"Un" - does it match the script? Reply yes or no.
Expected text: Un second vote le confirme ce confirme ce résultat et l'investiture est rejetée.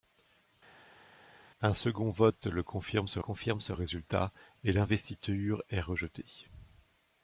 yes